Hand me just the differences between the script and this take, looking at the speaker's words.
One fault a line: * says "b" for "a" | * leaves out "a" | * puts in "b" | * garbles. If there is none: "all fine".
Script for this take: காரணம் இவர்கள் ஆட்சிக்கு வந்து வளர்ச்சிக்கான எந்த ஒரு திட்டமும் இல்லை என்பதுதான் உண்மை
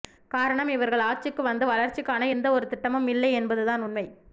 all fine